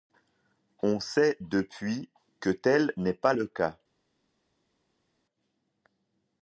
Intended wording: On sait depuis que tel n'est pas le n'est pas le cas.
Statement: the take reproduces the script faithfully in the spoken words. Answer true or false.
false